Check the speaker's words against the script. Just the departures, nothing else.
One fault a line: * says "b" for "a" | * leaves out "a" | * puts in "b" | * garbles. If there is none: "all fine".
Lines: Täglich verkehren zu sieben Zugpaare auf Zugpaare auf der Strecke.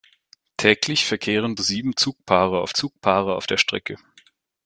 all fine